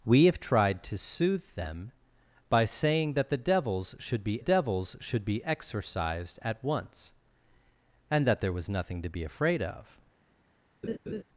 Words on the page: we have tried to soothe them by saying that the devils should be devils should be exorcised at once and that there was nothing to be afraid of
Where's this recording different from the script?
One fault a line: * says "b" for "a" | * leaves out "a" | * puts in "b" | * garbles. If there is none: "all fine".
all fine